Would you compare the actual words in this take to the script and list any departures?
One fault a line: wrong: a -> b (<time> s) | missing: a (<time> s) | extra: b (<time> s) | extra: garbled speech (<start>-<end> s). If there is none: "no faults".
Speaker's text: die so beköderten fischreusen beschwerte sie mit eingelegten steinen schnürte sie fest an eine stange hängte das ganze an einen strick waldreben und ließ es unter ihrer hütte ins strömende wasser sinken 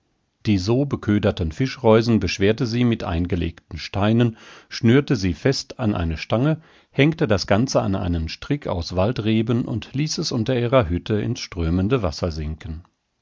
extra: aus (8.7 s)